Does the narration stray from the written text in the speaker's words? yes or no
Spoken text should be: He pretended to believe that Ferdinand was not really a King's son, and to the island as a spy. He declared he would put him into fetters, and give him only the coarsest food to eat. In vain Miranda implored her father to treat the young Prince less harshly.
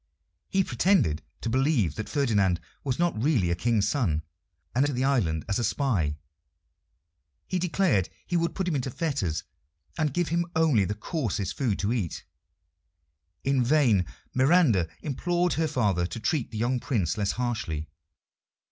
no